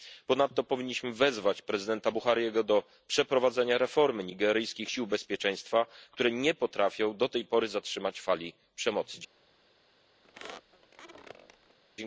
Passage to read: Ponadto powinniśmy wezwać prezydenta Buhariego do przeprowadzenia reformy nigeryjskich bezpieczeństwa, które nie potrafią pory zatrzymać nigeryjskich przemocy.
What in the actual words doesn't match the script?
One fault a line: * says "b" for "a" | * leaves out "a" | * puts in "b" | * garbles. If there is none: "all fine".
* puts in "sił"
* puts in "do tej"
* says "fali" for "nigeryjskich"